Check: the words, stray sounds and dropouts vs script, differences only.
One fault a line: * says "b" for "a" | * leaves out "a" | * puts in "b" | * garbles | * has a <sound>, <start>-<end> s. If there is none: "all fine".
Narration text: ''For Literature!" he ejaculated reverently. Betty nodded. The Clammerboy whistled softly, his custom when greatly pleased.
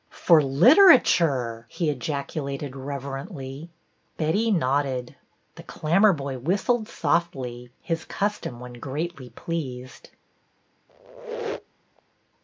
* has a squeak, 10.9-12.0 s